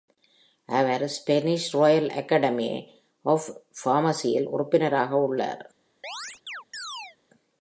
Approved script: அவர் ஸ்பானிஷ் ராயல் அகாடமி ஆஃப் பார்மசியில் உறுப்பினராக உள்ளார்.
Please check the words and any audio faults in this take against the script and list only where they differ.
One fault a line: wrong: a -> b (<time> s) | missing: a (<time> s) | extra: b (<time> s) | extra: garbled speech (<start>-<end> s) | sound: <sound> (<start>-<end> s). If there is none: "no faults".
sound: chirp (6.0-7.2 s)